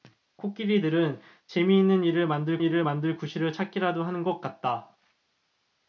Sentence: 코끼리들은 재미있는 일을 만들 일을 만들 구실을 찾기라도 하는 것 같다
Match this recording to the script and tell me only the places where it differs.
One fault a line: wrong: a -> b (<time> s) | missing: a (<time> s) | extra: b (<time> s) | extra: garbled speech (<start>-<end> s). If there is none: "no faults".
no faults